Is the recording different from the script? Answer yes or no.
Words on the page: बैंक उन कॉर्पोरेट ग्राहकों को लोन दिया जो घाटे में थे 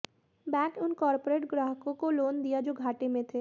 no